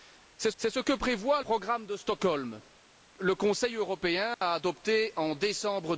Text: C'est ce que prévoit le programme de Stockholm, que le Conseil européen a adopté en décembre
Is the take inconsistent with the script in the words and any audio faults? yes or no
yes